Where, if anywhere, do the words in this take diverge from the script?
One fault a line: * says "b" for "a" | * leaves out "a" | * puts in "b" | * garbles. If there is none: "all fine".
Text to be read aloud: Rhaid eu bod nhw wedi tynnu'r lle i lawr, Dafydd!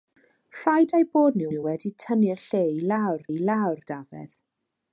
* puts in "nhw"
* puts in "i lawr"